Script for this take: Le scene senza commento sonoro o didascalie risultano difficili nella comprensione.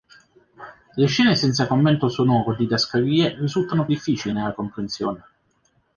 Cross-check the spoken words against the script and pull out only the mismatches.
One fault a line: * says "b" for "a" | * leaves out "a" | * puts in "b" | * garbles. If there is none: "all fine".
all fine